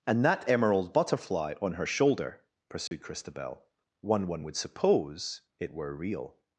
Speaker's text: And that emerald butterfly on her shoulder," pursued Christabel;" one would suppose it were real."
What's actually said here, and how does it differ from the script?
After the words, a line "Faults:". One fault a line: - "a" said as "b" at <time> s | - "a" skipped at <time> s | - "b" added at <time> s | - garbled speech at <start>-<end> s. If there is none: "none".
And that emerald butterfly on her shoulder," pursued Christabel;" one one would suppose it were real."
Faults:
- "one" added at 4.3 s